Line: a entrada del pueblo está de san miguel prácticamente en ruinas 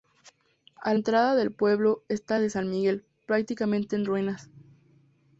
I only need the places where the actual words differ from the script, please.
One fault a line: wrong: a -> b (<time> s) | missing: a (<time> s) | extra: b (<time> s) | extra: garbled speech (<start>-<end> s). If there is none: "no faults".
no faults